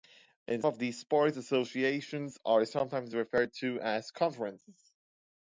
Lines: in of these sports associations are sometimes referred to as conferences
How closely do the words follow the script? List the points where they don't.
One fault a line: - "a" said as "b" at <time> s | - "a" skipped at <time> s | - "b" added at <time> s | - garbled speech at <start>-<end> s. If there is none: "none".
none